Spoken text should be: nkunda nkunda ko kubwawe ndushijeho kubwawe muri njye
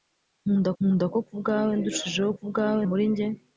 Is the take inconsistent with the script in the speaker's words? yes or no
no